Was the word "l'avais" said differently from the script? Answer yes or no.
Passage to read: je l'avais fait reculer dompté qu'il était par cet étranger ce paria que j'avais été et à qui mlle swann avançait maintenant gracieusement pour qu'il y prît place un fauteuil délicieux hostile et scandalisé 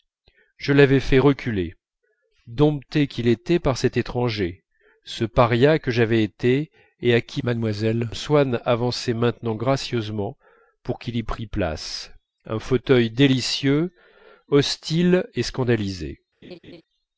no